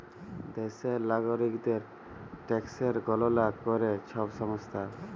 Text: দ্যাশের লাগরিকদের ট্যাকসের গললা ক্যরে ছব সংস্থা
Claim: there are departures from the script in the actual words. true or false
false